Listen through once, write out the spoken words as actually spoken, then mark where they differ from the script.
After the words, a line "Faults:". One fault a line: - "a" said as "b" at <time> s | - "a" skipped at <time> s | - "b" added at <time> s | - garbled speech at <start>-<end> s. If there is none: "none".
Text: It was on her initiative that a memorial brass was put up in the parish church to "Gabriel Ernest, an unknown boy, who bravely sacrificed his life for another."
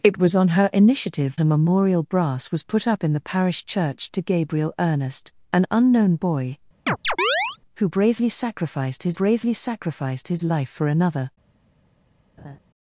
It was on her initiative a memorial brass was put up in the parish church to "Gabriel Ernest, an unknown boy, who bravely sacrificed his bravely sacrificed his life for another."
Faults:
- "that" skipped at 1.4 s
- "bravely sacrificed his" added at 9.1 s